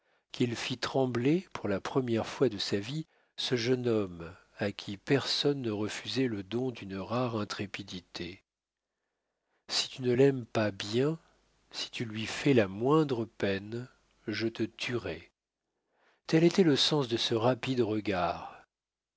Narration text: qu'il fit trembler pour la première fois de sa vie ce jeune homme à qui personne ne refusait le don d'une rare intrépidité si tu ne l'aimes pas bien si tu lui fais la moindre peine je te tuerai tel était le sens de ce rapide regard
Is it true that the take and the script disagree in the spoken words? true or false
false